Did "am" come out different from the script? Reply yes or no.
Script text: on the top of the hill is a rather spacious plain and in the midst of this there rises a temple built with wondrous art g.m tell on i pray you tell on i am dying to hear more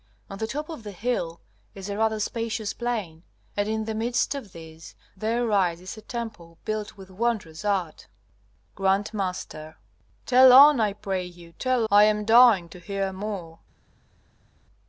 no